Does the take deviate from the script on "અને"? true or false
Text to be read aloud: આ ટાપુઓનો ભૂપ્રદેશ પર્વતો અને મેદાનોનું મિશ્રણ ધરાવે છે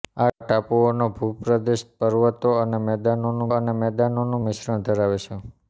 false